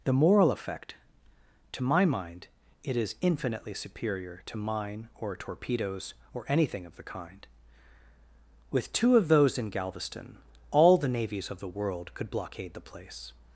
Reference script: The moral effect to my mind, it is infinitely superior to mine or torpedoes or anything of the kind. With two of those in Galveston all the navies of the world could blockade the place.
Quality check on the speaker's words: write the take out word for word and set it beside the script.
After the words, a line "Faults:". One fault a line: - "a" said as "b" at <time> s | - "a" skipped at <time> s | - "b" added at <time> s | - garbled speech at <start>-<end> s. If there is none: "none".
The moral effect to my mind, it is infinitely superior to mine or torpedoes or anything of the kind. With two of those in Galveston all the navies of the world could blockade the place.
Faults:
none